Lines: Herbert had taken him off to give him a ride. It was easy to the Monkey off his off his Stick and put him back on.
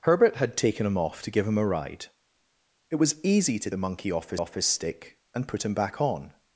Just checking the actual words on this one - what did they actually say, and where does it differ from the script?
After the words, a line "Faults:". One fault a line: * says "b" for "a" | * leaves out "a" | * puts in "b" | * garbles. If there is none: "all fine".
Herbert had taken him off to give him a ride. It was easy to the Monkey off his off his Stick and put him back on.
Faults:
all fine